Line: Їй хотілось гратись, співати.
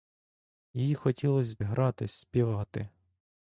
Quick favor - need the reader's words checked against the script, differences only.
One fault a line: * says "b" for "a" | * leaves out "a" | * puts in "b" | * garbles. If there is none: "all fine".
all fine